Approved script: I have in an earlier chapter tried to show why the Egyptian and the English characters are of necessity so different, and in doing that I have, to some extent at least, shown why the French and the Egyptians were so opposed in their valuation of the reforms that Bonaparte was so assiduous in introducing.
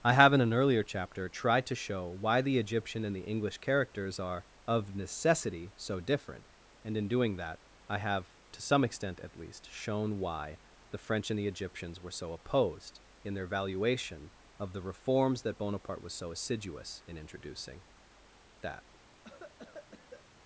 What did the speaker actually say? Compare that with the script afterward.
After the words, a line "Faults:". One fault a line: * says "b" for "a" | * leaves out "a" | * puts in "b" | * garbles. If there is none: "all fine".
I have in an earlier chapter tried to show why the Egyptian and the English characters are of necessity so different, and in doing that I have, to some extent at least, shown why the French and the Egyptians were so opposed in their valuation of the reforms that Bonaparte was so assiduous in introducing. That
Faults:
* puts in "That"